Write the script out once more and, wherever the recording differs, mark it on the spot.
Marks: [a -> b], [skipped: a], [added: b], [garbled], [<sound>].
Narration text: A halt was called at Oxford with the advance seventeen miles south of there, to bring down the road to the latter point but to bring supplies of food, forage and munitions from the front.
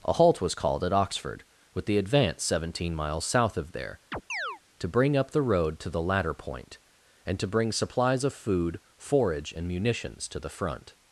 A halt was called at Oxford with the advance seventeen miles south of there, [chirp] to bring [down -> up] the road to the latter point [but -> and] to bring supplies of food, forage and munitions [from -> to] the front.